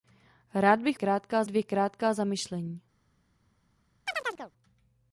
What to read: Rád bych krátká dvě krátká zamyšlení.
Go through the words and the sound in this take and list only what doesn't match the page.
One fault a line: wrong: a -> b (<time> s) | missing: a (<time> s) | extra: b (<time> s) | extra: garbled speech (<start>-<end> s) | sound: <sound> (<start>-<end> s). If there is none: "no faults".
sound: chirp (4.1-4.5 s)